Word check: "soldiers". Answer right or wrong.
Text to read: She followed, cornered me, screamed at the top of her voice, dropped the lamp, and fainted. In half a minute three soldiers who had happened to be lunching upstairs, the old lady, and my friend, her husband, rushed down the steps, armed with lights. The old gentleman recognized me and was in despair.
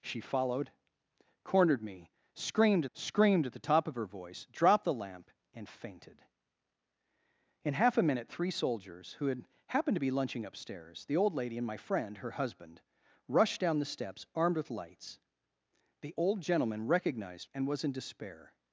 right